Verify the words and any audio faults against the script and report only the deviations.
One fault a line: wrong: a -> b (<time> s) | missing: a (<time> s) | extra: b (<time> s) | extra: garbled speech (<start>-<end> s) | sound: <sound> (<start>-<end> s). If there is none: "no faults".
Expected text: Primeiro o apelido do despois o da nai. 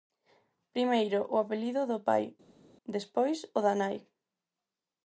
extra: pai (2.1 s)